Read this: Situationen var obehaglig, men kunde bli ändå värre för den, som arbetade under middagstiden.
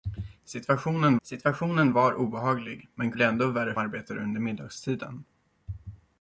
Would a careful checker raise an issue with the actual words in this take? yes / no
yes